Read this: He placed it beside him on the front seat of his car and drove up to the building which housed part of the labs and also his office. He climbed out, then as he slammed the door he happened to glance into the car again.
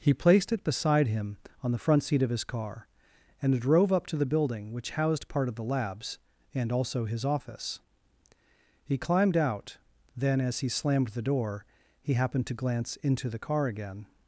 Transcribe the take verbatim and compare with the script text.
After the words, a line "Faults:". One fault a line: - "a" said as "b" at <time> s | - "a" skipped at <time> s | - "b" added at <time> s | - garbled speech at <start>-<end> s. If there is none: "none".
He placed it beside him on the front seat of his car and drove up to the building which housed part of the labs and also his office. He climbed out, then as he slammed the door he happened to glance into the car again.
Faults:
none